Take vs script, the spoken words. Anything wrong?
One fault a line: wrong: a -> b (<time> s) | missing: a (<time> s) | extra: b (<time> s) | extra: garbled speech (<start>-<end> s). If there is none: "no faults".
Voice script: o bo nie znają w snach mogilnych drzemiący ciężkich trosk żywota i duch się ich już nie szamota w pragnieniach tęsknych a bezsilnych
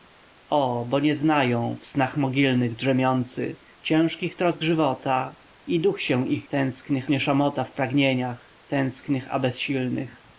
wrong: już -> tęsknych (6.5 s)